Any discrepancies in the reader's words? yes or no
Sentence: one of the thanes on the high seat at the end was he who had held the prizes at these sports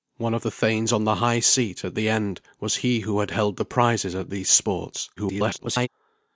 yes